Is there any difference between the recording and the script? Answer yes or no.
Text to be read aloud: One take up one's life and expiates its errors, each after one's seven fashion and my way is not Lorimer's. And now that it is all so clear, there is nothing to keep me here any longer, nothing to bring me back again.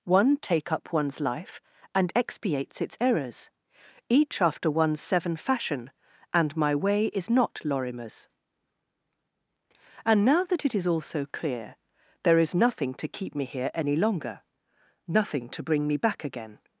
no